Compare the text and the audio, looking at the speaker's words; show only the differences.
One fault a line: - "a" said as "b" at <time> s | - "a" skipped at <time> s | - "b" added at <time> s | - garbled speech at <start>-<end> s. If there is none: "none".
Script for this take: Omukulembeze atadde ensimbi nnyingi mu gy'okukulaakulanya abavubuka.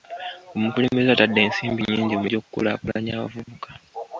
none